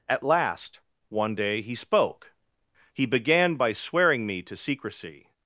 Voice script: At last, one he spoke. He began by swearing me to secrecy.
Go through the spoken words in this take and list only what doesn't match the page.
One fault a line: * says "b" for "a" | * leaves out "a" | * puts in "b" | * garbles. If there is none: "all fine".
* puts in "day"